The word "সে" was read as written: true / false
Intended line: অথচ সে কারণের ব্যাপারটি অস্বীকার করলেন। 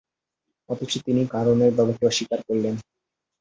false